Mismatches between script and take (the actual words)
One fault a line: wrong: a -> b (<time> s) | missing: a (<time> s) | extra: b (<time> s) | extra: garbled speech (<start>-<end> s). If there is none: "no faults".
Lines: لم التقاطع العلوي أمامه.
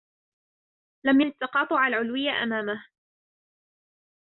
no faults